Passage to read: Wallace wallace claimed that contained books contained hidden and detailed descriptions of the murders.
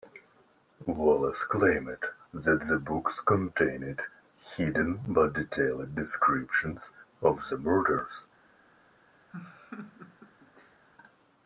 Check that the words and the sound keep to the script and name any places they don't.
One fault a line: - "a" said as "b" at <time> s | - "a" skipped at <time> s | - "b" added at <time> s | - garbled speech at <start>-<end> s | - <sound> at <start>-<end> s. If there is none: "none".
- "wallace" skipped at 1.4 s
- "contained" said as "the" at 2.7 s
- "and" said as "but" at 5.1 s
- laugh at 9.3-10.8 s